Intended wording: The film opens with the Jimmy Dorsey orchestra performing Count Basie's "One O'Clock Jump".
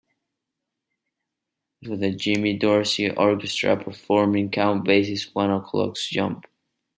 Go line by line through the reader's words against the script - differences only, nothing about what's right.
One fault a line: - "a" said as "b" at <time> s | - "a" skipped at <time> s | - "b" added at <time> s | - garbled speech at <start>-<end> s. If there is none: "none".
- "film opens" skipped at 1.9 s